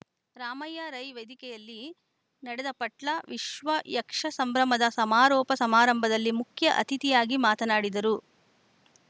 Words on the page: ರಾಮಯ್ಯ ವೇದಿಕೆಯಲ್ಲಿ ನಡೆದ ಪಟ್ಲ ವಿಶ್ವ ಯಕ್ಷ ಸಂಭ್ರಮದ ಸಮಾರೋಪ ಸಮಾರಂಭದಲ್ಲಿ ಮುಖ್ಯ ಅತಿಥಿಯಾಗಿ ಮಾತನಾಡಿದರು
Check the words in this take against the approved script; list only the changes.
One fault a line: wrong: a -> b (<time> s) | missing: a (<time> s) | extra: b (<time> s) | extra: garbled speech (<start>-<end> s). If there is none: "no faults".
extra: ರೈ (0.9 s)